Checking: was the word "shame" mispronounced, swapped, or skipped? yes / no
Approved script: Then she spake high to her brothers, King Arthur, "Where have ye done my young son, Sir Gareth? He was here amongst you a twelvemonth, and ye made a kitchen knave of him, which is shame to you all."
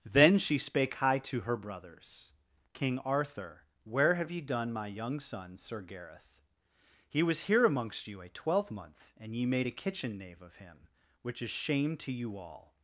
no